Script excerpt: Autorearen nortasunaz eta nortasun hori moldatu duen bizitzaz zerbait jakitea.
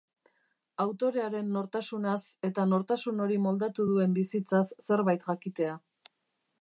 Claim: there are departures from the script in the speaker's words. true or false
false